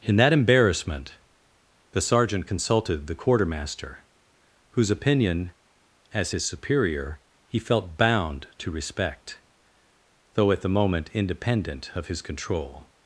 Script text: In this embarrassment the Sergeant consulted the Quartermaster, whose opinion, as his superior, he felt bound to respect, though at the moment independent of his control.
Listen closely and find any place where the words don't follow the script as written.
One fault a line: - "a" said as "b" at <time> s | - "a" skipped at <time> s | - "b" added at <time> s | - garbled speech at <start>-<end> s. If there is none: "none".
- "this" said as "that" at 0.1 s